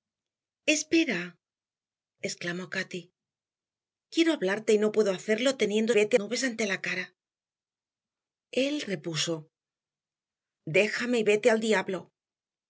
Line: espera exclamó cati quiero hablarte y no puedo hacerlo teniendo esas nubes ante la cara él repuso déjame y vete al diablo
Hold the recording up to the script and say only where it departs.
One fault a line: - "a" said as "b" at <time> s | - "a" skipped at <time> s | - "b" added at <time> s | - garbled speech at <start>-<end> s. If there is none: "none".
- "esas" said as "vete" at 5.9 s